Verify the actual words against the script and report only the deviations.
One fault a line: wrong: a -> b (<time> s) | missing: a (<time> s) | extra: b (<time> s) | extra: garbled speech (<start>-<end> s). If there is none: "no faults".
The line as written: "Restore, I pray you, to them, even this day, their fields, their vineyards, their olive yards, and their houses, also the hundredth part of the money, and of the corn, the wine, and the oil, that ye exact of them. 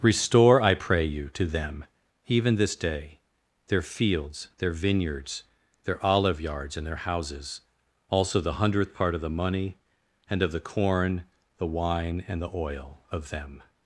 missing: that ye exact (13.0 s)